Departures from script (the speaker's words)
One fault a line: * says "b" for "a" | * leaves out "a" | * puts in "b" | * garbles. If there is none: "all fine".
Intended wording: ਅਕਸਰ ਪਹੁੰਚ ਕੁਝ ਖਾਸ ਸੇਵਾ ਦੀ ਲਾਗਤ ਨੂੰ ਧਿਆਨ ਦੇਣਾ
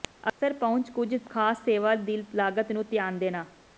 all fine